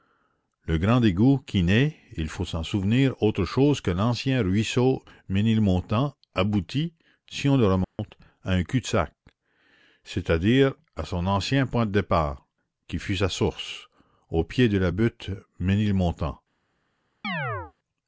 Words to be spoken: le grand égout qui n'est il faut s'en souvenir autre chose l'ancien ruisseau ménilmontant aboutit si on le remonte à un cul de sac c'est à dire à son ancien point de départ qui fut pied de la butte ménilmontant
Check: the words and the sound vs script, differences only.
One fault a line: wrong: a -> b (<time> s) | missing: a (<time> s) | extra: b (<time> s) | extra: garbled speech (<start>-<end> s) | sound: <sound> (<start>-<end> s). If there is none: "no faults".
extra: que (3.8 s)
sound: dropout (7.8-8.0 s)
extra: sa source au (13.2 s)
sound: chirp (17.2-17.7 s)